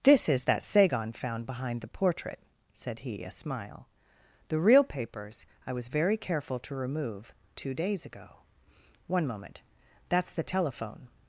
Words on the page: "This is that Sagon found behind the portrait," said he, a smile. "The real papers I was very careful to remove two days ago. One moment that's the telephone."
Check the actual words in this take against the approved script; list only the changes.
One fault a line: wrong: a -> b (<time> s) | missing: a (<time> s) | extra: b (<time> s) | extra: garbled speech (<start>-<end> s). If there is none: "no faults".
no faults